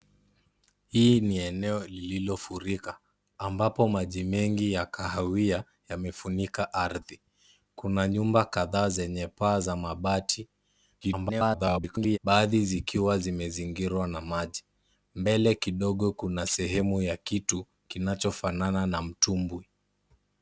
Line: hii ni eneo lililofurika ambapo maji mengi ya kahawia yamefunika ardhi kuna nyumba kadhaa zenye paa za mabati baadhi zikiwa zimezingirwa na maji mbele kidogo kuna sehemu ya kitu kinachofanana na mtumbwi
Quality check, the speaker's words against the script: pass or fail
fail